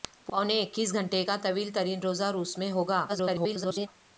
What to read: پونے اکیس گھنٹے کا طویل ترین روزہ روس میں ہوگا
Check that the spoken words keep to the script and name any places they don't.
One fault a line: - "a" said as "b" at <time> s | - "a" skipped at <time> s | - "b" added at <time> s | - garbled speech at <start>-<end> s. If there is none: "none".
- garbled speech at 3.1-3.9 s